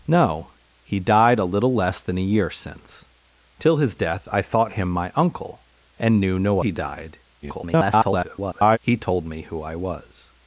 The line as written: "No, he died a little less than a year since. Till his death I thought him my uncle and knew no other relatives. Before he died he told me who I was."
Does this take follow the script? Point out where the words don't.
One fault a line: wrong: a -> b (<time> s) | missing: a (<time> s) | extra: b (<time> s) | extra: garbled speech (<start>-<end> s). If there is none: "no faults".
missing: other relatives Before (6.6 s)
extra: garbled speech (7.4-8.8 s)